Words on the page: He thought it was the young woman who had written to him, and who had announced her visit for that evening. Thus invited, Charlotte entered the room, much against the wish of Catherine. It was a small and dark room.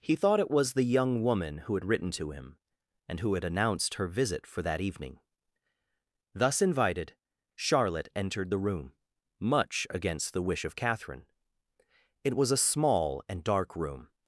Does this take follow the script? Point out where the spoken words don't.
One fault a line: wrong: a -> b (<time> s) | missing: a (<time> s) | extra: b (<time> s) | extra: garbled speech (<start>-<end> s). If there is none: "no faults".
no faults